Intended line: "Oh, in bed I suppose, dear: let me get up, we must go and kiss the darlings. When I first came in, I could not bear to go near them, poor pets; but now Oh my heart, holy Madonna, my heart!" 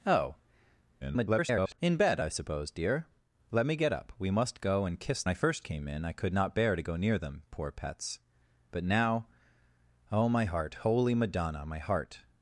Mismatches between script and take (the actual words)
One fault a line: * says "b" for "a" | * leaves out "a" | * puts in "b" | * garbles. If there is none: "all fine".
* garbles
* leaves out "the darlings When"